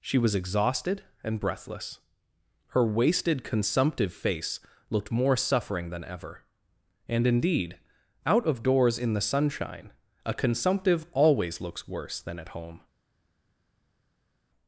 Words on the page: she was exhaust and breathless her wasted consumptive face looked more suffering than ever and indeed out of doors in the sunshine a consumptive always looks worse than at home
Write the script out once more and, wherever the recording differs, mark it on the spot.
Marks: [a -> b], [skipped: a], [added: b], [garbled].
she was [exhaust -> exhausted] and breathless her wasted consumptive face looked more suffering than ever and indeed out of doors in the sunshine a consumptive always looks worse than at home